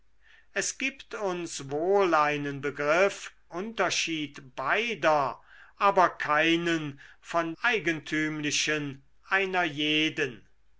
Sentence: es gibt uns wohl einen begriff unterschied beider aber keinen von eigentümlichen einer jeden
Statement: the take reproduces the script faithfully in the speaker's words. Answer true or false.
true